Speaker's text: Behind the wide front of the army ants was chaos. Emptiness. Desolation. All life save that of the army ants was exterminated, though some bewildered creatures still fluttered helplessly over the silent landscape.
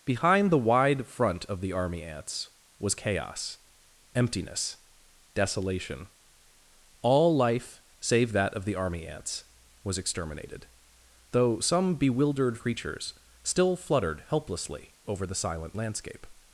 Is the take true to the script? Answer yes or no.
yes